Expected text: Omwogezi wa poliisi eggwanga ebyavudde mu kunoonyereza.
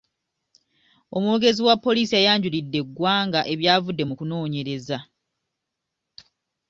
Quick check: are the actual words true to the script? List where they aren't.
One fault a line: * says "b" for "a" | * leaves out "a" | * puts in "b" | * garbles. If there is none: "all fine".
* puts in "yayanjulidde"